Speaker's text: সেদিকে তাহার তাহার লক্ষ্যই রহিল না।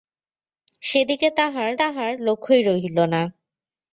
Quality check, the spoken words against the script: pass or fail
pass